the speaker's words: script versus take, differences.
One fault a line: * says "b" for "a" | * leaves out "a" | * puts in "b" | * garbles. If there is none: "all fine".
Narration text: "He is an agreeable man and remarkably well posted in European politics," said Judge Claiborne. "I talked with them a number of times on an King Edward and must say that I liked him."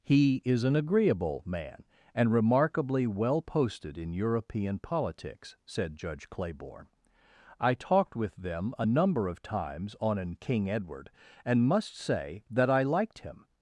all fine